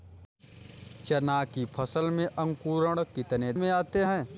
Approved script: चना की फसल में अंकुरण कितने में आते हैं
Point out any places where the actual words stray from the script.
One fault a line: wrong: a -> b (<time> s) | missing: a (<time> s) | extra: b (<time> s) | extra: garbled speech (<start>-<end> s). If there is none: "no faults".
no faults